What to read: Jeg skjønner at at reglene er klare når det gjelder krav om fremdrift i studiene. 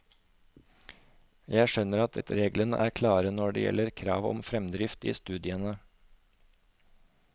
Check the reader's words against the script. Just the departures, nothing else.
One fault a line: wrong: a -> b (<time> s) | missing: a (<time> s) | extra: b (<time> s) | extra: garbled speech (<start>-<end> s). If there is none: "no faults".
no faults